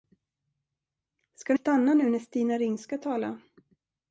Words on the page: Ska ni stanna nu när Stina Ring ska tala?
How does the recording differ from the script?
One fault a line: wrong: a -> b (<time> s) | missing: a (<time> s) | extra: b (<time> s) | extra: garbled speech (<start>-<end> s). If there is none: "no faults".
no faults